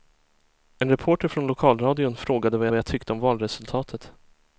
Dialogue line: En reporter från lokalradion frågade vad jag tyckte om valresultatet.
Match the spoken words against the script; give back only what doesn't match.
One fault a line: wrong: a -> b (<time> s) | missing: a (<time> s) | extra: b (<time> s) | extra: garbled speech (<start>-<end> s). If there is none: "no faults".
extra: vad (2.7 s)